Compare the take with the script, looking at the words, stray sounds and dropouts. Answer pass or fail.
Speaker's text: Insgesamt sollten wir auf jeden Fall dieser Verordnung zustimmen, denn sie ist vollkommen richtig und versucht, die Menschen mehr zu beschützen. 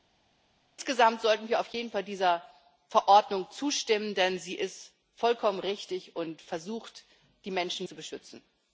fail